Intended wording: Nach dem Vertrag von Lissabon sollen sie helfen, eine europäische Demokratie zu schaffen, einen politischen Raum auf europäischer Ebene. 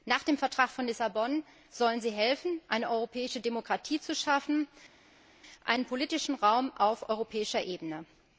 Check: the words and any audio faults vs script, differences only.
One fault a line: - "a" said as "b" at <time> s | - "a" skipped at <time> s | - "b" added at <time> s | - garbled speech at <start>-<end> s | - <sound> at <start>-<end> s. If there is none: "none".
none